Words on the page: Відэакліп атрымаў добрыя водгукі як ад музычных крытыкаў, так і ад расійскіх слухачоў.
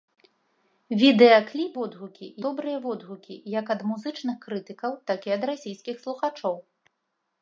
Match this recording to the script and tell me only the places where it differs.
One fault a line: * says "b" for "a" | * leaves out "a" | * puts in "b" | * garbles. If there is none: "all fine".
* says "водгукі" for "атрымаў"